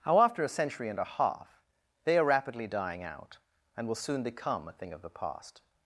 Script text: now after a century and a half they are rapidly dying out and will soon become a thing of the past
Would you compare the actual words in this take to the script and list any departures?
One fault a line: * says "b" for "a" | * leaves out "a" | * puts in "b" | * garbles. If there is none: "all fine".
* says "how" for "now"